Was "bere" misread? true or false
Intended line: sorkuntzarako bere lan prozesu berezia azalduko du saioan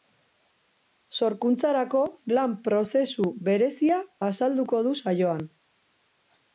true